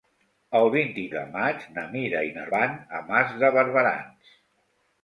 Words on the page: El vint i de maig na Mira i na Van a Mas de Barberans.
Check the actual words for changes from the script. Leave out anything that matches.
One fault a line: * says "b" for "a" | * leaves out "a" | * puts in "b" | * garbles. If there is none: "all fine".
all fine